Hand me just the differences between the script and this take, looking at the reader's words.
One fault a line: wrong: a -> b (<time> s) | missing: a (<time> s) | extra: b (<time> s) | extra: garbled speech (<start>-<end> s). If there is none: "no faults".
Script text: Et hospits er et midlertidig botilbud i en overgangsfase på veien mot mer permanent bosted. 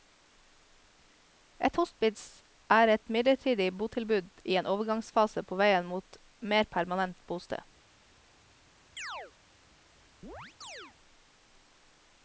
no faults